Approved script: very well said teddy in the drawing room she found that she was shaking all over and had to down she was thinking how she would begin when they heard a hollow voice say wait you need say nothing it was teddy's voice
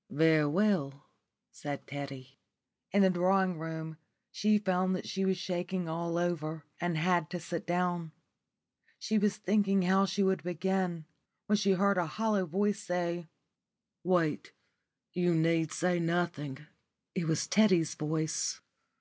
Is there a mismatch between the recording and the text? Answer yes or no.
yes